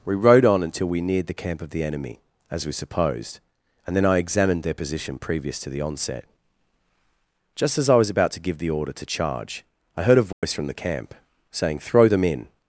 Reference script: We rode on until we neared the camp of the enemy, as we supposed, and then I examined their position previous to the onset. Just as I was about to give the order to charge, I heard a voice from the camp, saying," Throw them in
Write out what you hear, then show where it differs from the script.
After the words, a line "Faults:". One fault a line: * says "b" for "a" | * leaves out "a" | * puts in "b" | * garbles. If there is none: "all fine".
We rode on until we neared the camp of the enemy, as we supposed, and then I examined their position previous to the onset. Just as I was about to give the order to charge, I heard a voice from the camp, saying," Throw them in
Faults:
all fine